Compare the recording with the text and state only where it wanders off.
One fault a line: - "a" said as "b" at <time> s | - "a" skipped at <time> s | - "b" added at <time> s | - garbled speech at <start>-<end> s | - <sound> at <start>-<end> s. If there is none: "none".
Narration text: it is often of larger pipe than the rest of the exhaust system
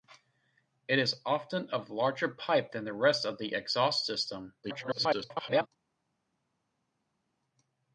- garbled speech at 4.6-5.7 s